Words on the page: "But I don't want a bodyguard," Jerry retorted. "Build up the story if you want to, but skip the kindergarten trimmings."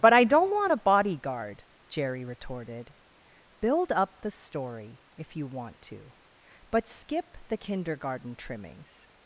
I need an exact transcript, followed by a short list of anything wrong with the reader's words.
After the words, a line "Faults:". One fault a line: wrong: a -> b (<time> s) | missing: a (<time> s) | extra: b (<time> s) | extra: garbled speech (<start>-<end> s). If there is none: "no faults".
"But I don't want a bodyguard," Jerry retorted. "Build up the story if you want to, but skip the kindergarten trimmings."
Faults:
no faults